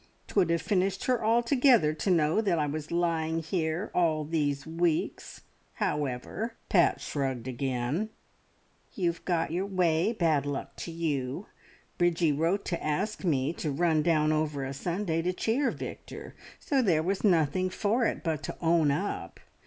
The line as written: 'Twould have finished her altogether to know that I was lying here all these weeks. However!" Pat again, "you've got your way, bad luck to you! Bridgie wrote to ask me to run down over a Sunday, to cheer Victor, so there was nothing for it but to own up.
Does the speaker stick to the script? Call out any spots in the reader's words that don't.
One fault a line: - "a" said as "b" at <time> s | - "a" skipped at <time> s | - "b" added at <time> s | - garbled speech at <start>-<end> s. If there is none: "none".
- "shrugged" added at 7.0 s